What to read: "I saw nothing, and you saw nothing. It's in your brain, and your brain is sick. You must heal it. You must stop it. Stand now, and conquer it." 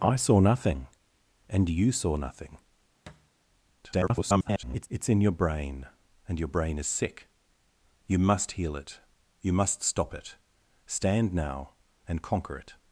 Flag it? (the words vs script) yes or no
yes